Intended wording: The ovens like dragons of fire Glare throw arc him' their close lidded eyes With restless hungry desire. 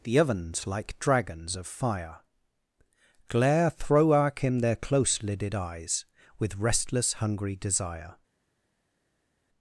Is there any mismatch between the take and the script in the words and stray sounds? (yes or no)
no